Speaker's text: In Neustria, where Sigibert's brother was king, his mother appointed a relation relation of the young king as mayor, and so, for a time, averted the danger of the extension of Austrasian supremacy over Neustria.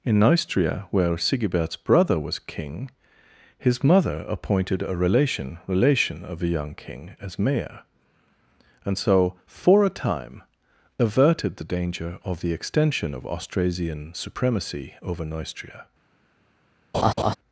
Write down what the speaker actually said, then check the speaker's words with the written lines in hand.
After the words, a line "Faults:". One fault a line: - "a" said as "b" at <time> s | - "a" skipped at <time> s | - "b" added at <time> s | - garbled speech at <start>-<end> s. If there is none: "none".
In Neustria, where Sigibert's brother was king, his mother appointed a relation relation of the young king as mayor, and so, for a time, averted the danger of the extension of Austrasian supremacy over Neustria.
Faults:
none